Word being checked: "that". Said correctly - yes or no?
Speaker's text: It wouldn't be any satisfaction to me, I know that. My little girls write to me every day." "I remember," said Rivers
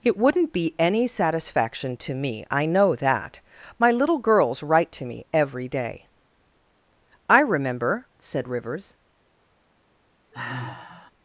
yes